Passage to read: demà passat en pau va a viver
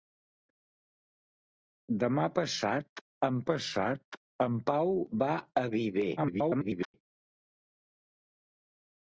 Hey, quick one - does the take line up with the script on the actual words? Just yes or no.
no